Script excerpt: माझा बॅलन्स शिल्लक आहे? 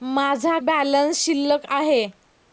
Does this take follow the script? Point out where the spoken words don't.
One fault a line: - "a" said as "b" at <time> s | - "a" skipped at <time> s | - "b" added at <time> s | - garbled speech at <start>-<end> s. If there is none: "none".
none